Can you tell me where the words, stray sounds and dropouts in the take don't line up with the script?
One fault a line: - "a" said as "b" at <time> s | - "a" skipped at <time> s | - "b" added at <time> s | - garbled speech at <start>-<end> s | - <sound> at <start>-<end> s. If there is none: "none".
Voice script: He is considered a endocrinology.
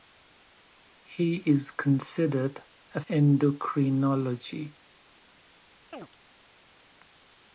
- chirp at 5.9-6.1 s